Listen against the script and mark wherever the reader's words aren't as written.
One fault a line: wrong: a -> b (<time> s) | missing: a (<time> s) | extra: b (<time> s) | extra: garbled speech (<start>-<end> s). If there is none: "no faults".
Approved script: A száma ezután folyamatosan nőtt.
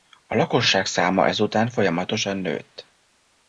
extra: lakosság (0.3 s)